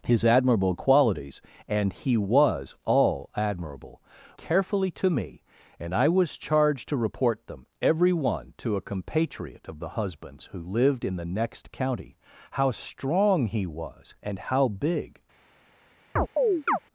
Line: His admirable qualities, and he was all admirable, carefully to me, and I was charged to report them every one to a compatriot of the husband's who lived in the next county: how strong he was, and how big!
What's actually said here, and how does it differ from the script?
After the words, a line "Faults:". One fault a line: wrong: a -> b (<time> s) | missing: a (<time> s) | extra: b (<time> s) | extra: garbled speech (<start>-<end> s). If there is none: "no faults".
His admirable qualities, and he was all admirable, carefully to me, and I was charged to report them every one to a compatriot of the husband's who lived in the next county: how strong he was, and how big!
Faults:
no faults